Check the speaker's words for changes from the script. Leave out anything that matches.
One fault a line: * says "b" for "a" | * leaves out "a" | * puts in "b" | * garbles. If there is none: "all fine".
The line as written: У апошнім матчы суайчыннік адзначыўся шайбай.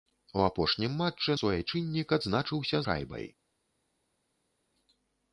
all fine